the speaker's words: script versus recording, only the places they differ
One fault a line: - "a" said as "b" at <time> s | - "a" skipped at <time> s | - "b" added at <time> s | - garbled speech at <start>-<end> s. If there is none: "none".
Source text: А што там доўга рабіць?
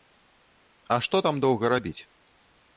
none